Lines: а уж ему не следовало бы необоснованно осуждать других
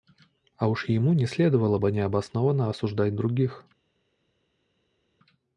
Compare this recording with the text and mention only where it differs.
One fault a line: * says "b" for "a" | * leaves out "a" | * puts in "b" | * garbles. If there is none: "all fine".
all fine